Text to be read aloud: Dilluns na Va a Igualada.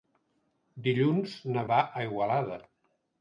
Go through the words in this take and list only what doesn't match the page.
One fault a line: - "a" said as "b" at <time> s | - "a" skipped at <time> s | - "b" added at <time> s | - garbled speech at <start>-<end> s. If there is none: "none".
none